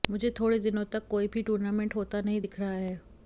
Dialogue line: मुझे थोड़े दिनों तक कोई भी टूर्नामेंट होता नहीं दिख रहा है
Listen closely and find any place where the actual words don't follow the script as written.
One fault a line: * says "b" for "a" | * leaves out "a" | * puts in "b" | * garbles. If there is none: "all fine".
all fine